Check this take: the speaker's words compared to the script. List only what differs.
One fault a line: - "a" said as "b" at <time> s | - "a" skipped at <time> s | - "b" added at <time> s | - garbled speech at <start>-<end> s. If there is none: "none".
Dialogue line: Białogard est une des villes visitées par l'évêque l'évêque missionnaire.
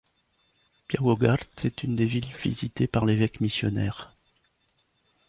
- "l'évêque" skipped at 3.4 s